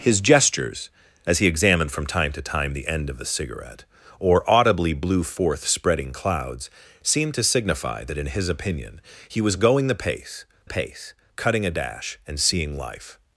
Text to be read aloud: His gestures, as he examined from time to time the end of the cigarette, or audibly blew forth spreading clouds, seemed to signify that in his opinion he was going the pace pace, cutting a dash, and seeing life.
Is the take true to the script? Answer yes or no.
yes